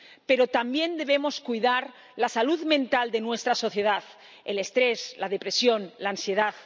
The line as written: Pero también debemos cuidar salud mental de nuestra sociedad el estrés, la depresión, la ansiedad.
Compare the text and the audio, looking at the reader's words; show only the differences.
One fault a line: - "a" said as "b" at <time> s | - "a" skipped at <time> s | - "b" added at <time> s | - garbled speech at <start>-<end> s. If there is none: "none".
- "la" added at 2.1 s